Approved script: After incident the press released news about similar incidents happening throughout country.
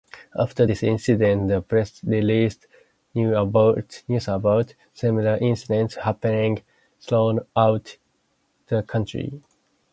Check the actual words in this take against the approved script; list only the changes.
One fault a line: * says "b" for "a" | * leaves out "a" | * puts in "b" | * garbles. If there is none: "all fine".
* puts in "this"
* puts in "the"